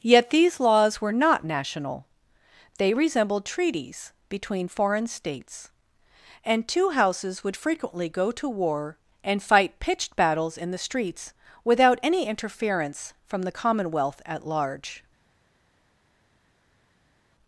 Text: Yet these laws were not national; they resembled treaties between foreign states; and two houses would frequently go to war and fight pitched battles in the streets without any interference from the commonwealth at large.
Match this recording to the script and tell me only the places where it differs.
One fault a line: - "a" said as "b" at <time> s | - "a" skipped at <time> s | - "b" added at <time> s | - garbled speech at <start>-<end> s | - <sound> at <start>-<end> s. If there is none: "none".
none